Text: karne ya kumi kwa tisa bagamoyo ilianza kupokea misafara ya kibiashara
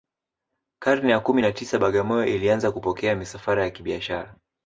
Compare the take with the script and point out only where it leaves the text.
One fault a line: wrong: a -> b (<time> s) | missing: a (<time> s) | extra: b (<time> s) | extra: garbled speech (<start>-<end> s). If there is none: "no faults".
wrong: kwa -> na (1.4 s)